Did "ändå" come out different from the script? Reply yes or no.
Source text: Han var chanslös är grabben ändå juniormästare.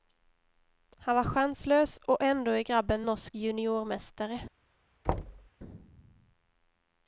yes